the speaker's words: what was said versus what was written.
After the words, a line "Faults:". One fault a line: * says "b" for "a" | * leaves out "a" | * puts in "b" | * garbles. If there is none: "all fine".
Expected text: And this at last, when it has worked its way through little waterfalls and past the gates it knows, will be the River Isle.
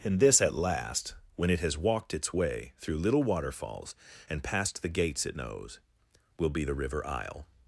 And this at last, when it has walked its way through little waterfalls and past the gates it knows, will be the River Isle.
Faults:
* says "walked" for "worked"